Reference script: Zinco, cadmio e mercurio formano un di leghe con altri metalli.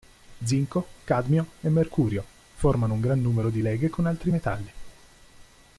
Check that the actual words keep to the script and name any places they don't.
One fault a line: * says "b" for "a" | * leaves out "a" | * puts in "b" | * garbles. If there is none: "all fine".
* puts in "gran numero"